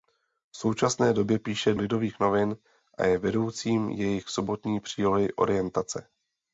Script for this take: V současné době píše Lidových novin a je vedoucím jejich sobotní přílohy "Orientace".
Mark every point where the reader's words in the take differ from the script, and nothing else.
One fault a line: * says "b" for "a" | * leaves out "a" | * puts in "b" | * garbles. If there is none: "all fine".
all fine